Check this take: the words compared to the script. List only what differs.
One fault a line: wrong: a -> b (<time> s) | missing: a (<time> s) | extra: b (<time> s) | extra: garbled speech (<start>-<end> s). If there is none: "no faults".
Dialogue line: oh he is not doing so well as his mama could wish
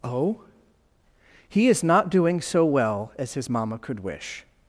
no faults